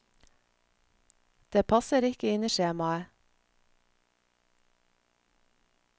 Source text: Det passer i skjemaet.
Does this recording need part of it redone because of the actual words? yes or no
yes